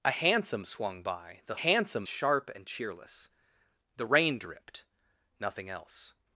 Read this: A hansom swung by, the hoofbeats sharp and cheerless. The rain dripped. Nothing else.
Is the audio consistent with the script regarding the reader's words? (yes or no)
no